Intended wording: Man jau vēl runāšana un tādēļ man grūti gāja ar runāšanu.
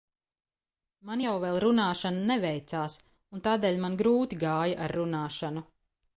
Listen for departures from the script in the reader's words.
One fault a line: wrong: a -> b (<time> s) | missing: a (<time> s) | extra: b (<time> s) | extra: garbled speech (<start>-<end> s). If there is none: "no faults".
extra: neveicās (2.3 s)